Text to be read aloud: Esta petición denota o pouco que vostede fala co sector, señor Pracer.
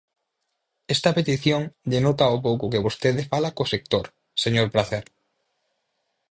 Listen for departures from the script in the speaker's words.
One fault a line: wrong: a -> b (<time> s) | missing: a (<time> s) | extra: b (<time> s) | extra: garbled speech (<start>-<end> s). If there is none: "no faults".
no faults